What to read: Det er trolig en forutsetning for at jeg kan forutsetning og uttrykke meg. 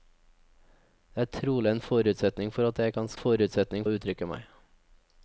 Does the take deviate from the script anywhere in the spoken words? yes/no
no